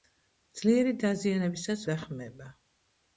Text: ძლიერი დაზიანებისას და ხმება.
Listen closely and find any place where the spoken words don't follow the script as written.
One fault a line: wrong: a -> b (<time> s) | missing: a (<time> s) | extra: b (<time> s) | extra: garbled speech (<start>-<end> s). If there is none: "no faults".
no faults